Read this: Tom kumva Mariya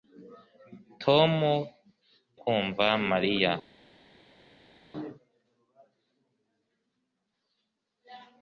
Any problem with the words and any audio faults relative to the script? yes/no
no